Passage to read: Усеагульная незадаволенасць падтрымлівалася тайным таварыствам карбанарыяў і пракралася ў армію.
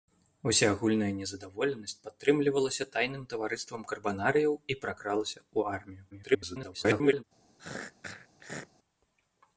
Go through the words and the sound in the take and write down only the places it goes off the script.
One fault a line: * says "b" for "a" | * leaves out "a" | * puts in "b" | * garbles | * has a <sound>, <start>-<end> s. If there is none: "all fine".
* garbles
* has a throat clearing, 7.6-8.7 s